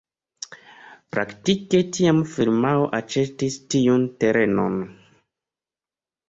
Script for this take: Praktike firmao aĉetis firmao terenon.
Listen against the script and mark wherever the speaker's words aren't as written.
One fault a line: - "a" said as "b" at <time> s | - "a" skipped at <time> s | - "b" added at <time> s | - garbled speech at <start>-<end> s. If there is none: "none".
- "tiam" added at 2.0 s
- "firmao" said as "tiun" at 3.8 s